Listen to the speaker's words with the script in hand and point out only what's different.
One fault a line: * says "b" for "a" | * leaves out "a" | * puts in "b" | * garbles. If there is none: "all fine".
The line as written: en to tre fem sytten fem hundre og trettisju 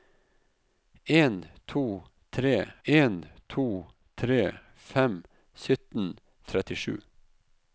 * says "en to tre" for "fem sytten"
* says "sytten" for "hundre og"